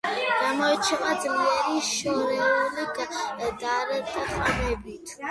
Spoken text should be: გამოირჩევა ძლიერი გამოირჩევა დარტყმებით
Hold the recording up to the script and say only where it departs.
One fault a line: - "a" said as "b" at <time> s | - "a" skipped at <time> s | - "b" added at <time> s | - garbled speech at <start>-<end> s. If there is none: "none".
- "გამოირჩევა" said as "შორეული" at 1.9 s